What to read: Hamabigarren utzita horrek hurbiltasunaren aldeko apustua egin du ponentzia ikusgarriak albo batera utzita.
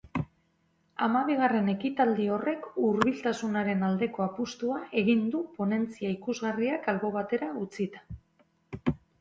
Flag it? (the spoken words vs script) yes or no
yes